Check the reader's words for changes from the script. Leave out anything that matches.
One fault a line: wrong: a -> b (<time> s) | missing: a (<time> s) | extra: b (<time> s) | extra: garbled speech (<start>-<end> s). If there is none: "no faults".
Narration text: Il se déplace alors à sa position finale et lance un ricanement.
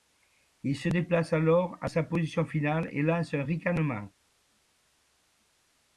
no faults